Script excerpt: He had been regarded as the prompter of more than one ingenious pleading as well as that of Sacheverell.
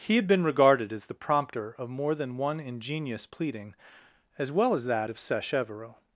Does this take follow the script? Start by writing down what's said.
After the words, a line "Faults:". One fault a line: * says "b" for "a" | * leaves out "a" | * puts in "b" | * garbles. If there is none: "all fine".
He had been regarded as the prompter of more than one ingenious pleading as well as that of Sacheverell.
Faults:
all fine